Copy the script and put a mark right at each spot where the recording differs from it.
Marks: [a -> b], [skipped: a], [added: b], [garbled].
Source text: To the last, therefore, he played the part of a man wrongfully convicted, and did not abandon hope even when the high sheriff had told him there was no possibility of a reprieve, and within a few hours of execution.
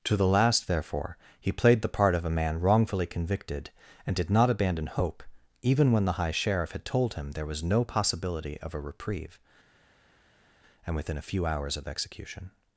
To the last, therefore, he played the part of a man wrongfully convicted, and did not abandon hope even when the high sheriff had told him there was no possibility of a reprieve, and within a few hours of execution.